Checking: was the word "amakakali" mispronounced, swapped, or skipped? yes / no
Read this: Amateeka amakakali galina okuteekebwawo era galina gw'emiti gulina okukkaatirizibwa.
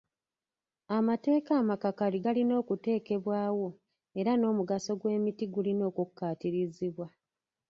no